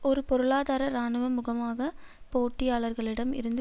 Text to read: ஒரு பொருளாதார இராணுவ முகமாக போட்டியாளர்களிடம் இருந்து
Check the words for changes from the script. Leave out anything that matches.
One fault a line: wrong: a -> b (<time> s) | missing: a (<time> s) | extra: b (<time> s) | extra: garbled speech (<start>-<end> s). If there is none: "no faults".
no faults